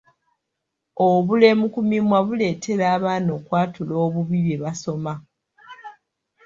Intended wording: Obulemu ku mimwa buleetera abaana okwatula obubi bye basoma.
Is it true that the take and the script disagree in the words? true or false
false